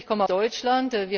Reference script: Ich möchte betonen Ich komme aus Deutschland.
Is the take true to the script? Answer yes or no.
no